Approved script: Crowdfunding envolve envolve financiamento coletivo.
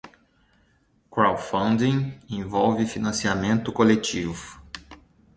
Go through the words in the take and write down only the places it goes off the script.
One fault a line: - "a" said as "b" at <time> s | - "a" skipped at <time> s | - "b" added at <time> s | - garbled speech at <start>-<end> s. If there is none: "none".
- "envolve" skipped at 2.9 s